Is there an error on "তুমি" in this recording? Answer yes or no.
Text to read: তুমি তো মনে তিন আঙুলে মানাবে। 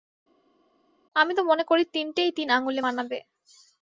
yes